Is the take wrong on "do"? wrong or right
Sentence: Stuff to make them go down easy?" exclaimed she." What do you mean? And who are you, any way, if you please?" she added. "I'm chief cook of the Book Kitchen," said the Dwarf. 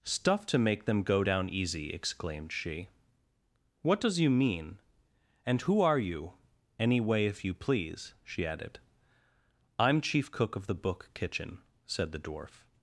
wrong